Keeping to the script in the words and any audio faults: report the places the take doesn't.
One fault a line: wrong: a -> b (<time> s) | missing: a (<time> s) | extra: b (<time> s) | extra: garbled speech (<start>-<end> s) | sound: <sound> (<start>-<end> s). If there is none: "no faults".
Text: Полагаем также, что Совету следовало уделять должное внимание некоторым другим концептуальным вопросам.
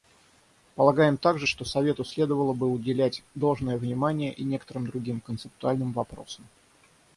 extra: бы (2.5 s)
extra: и (4.3 s)